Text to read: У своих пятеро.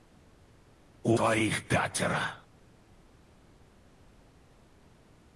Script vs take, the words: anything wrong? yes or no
no